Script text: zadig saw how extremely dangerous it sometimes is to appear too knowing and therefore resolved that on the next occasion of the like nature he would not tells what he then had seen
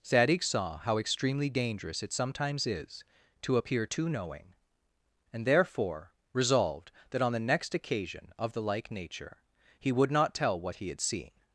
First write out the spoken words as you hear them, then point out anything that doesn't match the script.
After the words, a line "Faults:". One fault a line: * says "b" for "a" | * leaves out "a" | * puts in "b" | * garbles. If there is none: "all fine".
zadig saw how extremely dangerous it sometimes is to appear too knowing and therefore resolved that on the next occasion of the like nature he would not tell what he had seen
Faults:
* says "tell" for "tells"
* leaves out "then"